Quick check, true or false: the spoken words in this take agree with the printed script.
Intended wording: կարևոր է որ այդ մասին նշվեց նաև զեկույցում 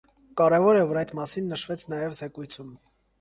true